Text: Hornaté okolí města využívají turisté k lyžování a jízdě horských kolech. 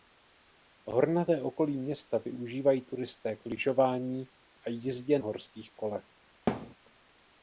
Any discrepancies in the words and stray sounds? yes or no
yes